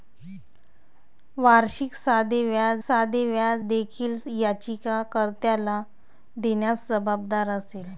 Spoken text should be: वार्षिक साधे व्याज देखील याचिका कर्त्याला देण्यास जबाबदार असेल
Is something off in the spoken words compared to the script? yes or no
yes